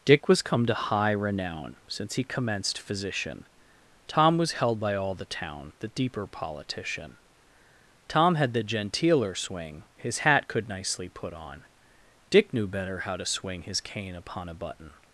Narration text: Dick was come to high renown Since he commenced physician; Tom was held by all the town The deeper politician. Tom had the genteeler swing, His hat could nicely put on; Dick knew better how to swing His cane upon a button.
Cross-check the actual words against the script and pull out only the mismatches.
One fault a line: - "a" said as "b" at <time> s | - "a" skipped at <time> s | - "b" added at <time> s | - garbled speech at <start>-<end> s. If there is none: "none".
none